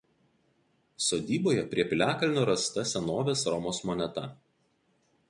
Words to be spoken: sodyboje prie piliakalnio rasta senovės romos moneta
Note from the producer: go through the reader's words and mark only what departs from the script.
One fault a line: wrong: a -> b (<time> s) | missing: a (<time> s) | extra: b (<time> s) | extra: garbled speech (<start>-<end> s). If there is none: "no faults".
no faults